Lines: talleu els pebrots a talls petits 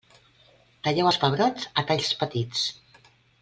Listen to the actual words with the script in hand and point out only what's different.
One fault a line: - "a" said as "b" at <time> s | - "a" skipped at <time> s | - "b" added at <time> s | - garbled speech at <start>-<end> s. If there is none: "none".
none